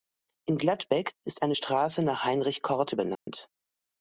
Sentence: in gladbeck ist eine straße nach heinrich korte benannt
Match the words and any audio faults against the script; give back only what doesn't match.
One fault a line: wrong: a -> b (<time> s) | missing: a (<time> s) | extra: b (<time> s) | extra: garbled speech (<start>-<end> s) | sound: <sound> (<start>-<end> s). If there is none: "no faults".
sound: dropout (3.2-3.3 s)